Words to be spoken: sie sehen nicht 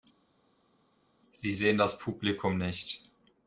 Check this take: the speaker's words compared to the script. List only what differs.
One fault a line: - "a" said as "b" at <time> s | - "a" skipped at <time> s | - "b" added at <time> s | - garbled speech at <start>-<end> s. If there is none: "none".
- "das publikum" added at 1.8 s